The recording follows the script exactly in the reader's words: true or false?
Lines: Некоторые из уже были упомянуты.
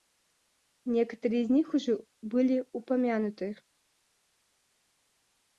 false